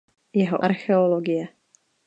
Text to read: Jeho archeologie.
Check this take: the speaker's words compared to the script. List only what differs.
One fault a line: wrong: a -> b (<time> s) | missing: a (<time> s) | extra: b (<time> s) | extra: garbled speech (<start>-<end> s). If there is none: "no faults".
no faults